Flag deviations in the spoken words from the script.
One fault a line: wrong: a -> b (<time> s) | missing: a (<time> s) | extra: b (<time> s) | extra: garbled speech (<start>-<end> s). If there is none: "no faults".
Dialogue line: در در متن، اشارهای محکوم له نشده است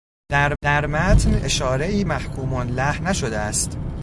no faults